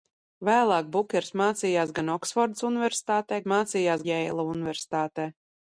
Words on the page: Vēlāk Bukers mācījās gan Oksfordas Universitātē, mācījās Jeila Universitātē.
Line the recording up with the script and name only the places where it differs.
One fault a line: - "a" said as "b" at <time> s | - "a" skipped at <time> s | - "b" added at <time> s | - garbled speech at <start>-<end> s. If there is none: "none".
none